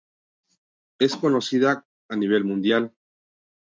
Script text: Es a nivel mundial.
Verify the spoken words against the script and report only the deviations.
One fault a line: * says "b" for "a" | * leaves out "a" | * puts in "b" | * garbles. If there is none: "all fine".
* puts in "conocida"